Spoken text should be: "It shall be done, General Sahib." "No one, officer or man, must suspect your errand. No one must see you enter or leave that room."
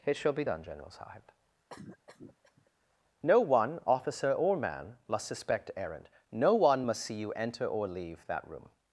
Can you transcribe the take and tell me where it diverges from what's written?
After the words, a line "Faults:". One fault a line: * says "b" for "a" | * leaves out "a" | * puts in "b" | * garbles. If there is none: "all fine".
"It shall be done, General Sahib." "No one, officer or man, must suspect errand. No one must see you enter or leave that room."
Faults:
* leaves out "your"